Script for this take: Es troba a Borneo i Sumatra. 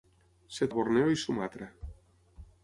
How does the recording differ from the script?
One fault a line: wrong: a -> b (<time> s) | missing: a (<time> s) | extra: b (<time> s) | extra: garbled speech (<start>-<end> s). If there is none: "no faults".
missing: troba (0.7 s)